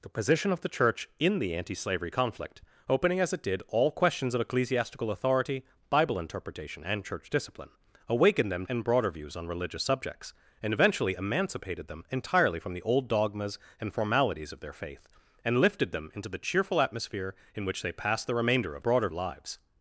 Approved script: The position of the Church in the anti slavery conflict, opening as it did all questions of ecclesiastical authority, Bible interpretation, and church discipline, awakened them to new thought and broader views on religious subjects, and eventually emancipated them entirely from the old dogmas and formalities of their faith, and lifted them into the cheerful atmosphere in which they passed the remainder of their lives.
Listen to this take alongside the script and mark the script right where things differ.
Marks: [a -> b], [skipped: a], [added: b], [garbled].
The position of the Church in the anti slavery conflict, opening as it did all questions of ecclesiastical authority, Bible interpretation, and church discipline, awakened them [skipped: to new thought] and broader views on religious subjects, and eventually emancipated them entirely from the old dogmas and formalities of their faith, and lifted them into the cheerful atmosphere in which they passed the remainder of [their -> broader] lives.